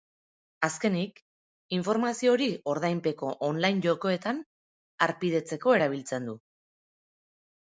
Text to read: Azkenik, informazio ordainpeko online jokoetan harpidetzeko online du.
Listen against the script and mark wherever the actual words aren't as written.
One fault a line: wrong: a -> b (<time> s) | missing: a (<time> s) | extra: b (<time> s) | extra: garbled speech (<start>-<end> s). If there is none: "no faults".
extra: hori (2.4 s)
wrong: online -> erabiltzen (5.8 s)